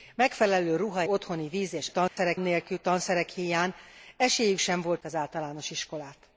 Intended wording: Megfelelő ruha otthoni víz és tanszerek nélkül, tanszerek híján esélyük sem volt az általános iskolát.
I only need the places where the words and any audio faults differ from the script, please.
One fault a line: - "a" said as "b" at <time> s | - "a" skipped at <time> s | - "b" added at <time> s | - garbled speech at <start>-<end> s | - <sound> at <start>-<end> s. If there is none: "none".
- dropout at 2.1-2.2 s